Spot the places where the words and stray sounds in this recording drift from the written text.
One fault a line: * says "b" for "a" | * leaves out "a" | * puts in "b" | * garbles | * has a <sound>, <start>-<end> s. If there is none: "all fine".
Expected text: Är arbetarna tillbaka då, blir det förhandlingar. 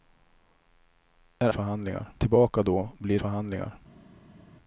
* says "förhandlingar" for "arbetarna"
* leaves out "det"